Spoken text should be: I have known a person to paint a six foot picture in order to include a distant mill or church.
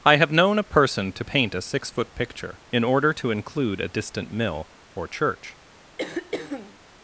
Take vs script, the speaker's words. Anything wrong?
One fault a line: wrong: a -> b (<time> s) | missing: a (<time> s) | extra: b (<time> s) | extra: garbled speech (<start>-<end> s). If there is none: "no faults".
no faults